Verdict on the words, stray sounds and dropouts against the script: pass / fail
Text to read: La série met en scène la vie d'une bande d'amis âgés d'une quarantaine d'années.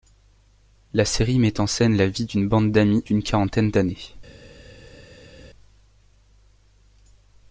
fail